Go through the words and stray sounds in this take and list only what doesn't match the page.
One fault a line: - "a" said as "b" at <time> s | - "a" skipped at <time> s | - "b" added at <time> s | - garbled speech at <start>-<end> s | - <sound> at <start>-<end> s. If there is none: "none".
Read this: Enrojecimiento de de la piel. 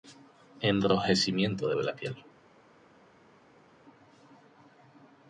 none